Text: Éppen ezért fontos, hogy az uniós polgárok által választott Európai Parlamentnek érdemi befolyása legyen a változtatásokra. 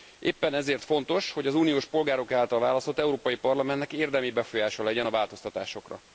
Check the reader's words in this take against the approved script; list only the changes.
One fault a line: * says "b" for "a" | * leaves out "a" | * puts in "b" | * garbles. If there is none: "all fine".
all fine